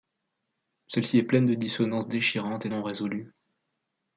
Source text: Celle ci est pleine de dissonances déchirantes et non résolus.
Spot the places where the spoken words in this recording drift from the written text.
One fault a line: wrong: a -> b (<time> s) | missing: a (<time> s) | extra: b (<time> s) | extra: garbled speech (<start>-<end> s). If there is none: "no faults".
no faults